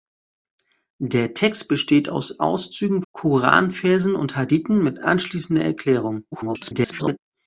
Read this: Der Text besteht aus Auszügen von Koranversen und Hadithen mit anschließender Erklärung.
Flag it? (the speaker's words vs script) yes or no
yes